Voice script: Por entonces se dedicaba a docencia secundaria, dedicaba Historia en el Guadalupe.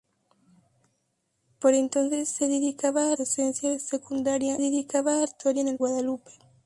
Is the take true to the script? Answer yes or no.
yes